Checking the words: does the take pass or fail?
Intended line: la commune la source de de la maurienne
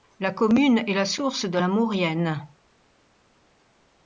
fail